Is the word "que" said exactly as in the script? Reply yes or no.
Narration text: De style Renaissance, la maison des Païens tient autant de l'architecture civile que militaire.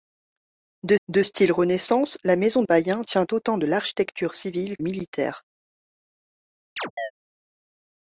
no